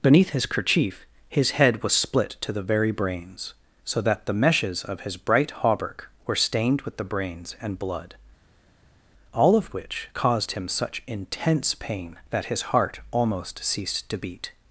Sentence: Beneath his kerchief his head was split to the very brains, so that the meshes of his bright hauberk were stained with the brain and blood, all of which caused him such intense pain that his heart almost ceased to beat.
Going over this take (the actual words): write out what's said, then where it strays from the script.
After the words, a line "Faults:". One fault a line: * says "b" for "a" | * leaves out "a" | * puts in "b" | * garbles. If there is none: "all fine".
Beneath his kerchief his head was split to the very brains, so that the meshes of his bright hauberk were stained with the brains and blood, all of which caused him such intense pain that his heart almost ceased to beat.
Faults:
* says "brains" for "brain"